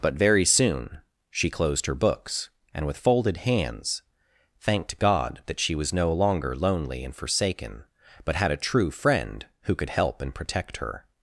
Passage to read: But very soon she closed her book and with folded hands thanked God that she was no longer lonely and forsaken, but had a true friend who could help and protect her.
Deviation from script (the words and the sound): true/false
true